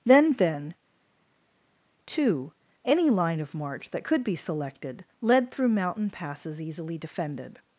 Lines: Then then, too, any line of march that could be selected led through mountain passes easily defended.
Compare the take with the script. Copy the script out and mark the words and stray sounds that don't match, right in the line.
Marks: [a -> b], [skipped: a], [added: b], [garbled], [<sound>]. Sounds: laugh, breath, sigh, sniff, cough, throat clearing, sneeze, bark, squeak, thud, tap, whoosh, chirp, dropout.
Then then, too, any line of march that could be selected led through mountain passes easily defended.